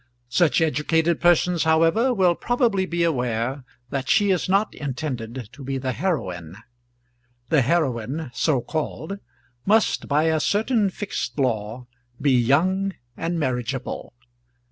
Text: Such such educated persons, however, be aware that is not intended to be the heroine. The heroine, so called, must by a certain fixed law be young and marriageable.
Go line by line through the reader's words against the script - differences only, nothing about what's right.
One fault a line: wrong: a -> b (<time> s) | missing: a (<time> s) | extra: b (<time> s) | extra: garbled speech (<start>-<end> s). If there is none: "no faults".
missing: such (0.6 s)
extra: will probably (2.1 s)
extra: she (4.1 s)